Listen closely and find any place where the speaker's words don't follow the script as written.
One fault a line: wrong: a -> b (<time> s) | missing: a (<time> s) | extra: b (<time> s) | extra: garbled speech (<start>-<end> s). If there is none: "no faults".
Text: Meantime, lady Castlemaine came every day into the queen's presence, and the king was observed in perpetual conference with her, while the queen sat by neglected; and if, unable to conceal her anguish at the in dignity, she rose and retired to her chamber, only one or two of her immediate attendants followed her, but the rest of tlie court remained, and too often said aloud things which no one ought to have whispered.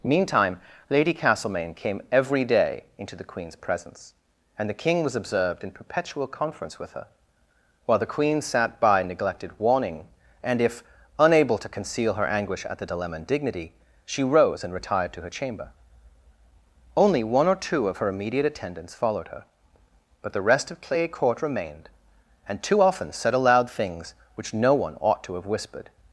extra: warning (9.6 s)
wrong: in -> dilemma and (12.8 s)
wrong: tlie -> clay (20.8 s)